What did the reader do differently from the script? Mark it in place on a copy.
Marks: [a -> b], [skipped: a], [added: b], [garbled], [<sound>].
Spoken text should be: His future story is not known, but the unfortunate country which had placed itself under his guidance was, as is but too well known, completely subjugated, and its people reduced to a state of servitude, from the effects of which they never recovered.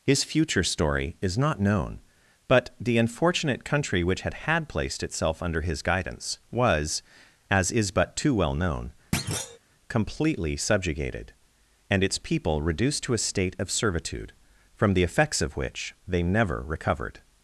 His future story is not known, but the unfortunate country which had [added: had] placed itself under his guidance was, as is but too well known, [thud] completely subjugated, and its people reduced to a state of servitude, from the effects of which they never recovered.